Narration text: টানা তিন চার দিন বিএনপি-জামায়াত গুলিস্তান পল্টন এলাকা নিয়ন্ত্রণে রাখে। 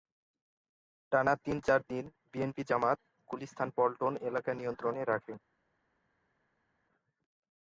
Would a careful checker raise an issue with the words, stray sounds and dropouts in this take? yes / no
no